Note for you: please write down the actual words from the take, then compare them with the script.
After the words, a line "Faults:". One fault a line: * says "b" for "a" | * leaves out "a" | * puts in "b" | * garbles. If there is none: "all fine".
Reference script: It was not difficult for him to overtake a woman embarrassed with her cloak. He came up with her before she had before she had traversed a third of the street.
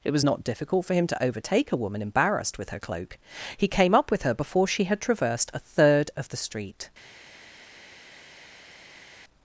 It was not difficult for him to overtake a woman embarrassed with her cloak. He came up with her before she had traversed a third of the street.
Faults:
* leaves out "before she had"